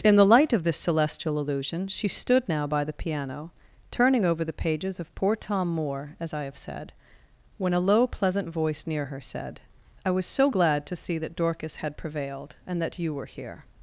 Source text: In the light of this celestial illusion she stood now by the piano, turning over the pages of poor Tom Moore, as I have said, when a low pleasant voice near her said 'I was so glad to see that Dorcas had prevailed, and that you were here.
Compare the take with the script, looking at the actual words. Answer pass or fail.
pass